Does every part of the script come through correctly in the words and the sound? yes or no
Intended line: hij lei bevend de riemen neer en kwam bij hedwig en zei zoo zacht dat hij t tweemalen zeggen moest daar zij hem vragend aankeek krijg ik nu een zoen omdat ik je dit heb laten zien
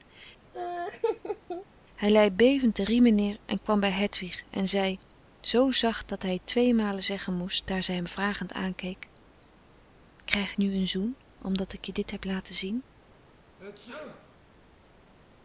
no